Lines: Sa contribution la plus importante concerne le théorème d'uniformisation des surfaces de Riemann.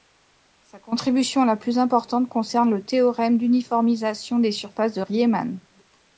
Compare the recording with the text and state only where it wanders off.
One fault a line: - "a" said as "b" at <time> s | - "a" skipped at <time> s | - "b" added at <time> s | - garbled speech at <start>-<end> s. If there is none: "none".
none